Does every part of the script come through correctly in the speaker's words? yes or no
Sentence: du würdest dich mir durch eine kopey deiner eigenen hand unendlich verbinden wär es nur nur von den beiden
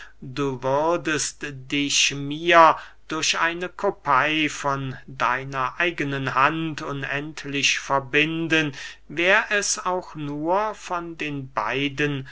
no